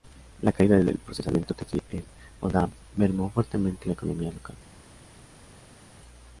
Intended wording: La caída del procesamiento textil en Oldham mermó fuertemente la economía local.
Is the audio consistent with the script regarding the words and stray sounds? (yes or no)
yes